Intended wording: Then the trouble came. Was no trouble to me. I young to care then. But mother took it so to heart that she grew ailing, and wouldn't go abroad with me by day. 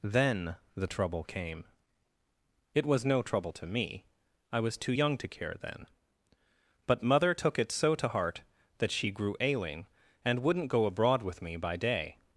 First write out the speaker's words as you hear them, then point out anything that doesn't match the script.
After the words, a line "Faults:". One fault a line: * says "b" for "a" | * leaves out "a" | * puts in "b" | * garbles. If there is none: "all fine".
Then the trouble came. It was no trouble to me. I was too young to care then. But mother took it so to heart that she grew ailing, and wouldn't go abroad with me by day.
Faults:
* puts in "It"
* puts in "was too"